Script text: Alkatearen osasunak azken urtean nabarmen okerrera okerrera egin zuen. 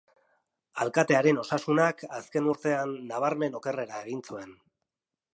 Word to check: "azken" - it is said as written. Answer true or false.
true